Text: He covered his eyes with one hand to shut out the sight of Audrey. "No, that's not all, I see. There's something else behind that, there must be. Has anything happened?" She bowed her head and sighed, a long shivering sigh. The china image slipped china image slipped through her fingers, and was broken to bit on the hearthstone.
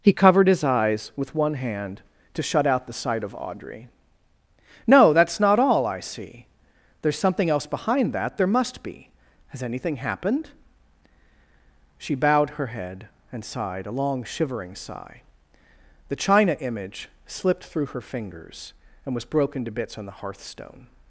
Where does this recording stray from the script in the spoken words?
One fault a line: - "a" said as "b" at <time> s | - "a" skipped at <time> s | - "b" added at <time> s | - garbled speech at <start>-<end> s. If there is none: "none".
- "china image slipped" skipped at 17.6 s
- "bit" said as "bits" at 19.7 s